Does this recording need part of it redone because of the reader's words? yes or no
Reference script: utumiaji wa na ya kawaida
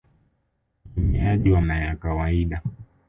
no